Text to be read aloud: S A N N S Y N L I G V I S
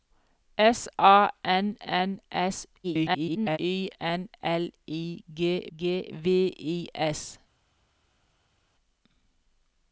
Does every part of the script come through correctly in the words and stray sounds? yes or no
no